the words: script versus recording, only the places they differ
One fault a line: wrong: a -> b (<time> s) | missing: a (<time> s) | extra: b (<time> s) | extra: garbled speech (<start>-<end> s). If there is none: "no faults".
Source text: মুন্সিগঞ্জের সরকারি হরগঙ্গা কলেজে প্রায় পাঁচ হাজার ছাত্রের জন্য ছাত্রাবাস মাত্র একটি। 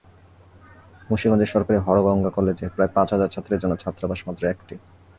no faults